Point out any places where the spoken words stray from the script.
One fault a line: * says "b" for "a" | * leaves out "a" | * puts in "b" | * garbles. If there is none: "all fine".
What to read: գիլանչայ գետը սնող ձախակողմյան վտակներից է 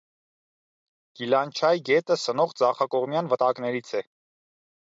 all fine